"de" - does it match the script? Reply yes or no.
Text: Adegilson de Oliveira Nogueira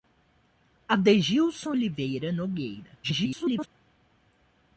no